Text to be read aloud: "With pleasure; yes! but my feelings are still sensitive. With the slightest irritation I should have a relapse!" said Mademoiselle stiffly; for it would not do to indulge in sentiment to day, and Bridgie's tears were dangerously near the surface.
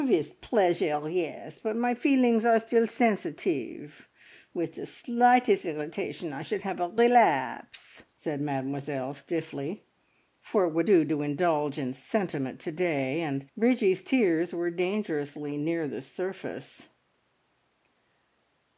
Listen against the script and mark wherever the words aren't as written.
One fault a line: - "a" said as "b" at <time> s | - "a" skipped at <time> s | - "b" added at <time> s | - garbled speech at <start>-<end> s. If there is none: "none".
- "not" skipped at 10.9 s